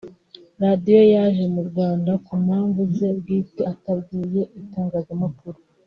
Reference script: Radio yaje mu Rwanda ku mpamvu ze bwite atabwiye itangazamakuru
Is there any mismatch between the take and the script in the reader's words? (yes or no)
no